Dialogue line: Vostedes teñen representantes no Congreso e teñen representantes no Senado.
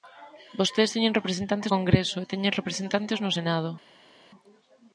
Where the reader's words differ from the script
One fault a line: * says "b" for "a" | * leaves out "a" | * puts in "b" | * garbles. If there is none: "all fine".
* leaves out "no"